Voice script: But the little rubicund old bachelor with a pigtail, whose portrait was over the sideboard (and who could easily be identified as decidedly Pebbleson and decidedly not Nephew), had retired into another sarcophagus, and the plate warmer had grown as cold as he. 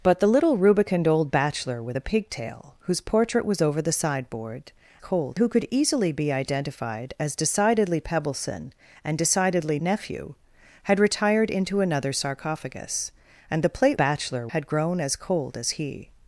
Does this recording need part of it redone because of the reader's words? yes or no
yes